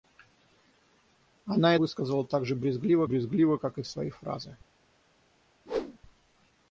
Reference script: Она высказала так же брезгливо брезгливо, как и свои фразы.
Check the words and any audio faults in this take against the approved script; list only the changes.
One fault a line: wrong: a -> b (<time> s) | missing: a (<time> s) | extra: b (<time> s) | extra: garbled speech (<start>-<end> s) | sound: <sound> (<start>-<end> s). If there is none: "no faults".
sound: whoosh (5.7-6.0 s)